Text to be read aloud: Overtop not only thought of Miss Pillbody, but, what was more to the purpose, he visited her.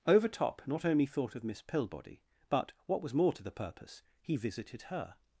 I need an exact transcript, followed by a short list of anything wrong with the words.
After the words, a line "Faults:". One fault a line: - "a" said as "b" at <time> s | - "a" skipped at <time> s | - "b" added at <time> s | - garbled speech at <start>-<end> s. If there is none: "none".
Overtop not only thought of Miss Pillbody, but, what was more to the purpose, he visited her.
Faults:
none